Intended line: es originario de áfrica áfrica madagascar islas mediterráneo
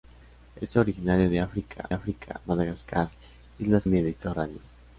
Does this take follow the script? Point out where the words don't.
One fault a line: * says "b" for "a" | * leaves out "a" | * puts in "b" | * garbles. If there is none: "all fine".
all fine